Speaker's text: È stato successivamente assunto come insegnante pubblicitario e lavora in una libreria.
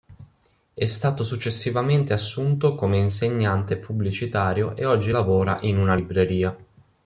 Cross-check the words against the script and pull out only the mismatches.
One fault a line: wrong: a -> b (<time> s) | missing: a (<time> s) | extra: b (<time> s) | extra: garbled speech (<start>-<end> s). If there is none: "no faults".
extra: oggi (4.8 s)